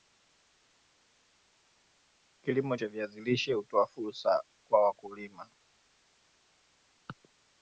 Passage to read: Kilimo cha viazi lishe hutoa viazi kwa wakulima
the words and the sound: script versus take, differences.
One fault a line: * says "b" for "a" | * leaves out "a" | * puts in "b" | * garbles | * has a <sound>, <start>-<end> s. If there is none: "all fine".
* says "fursa" for "viazi"